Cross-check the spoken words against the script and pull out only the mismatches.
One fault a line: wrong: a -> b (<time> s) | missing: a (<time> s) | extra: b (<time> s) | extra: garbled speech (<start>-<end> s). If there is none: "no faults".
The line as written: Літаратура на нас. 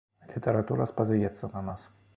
extra: спадзяецца (0.9 s)